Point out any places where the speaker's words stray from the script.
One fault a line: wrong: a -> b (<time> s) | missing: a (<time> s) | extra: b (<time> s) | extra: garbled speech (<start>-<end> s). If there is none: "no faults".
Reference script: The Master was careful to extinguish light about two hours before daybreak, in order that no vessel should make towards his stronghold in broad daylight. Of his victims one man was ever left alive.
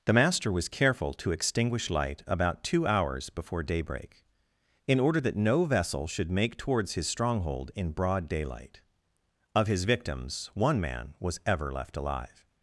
no faults